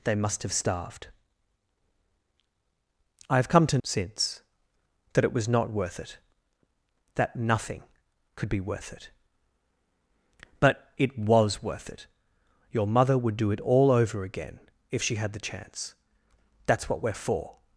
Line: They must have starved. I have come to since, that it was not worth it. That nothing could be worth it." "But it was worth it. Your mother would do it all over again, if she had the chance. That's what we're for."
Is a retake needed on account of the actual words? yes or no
no